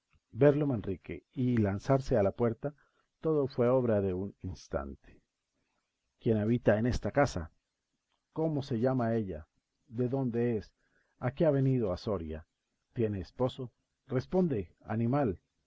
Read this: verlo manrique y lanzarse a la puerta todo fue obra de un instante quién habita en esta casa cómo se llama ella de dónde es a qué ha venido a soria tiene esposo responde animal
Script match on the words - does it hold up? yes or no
yes